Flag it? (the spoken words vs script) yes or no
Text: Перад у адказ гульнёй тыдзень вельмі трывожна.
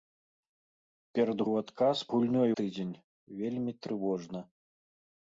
no